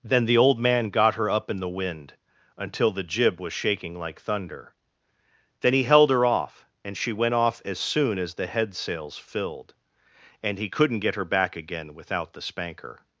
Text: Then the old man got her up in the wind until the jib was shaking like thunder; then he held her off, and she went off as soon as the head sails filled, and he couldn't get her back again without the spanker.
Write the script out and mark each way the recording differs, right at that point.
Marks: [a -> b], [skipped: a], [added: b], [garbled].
Then the old man got her up in the wind until the jib was shaking like thunder; then he held her off, and she went off as soon as the head sails filled, and he couldn't get her back again without the spanker.